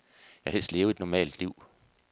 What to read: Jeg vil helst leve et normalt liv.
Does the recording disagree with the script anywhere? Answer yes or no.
no